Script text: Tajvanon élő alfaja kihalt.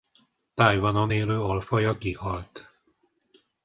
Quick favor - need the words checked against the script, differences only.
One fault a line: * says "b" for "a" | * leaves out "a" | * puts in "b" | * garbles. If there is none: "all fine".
all fine